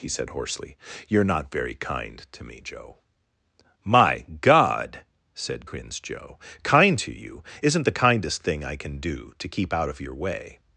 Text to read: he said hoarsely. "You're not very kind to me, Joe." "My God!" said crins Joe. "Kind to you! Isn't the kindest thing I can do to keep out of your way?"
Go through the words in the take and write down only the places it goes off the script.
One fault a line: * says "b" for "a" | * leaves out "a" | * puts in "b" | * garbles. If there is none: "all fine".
all fine